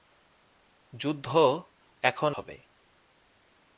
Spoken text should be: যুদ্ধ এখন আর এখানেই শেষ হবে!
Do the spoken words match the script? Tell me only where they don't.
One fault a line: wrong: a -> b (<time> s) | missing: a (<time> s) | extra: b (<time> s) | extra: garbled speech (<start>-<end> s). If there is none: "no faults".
missing: আর এখানেই শেষ (2.3 s)